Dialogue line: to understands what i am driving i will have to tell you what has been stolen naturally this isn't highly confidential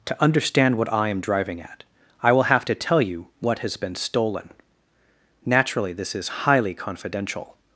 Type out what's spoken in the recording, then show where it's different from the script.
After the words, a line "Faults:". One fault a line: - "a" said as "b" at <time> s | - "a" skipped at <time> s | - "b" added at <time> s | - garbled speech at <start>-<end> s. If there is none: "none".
to understand what i am driving at i will have to tell you what has been stolen naturally this is highly confidential
Faults:
- "understands" said as "understand" at 0.2 s
- "at" added at 1.6 s
- "isn't" said as "is" at 6.2 s